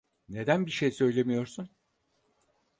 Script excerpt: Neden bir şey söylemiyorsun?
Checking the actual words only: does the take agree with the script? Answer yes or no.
yes